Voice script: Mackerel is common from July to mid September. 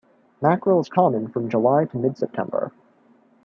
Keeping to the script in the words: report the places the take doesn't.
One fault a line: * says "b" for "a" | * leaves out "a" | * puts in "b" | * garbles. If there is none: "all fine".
all fine